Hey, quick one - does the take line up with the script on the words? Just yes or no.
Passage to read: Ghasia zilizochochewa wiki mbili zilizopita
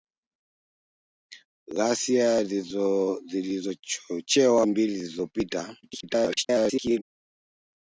no